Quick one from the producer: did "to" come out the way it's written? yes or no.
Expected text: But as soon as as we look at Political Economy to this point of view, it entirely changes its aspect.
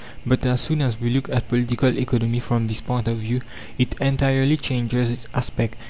no